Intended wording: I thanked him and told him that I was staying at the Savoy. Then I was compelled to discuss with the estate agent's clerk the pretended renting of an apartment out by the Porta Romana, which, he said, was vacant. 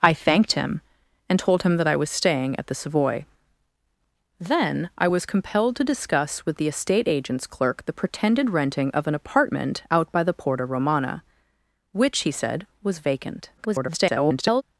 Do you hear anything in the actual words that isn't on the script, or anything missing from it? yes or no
yes